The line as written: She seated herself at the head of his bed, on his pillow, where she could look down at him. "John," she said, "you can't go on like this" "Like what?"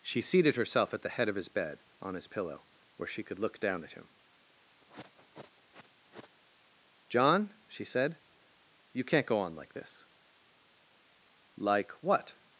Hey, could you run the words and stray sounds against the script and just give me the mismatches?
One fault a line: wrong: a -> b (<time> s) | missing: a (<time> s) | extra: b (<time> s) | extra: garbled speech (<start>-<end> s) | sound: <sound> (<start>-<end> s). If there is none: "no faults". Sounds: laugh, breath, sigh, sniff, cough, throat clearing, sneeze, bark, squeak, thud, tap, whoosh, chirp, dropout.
sound: sniff (4.8-6.4 s)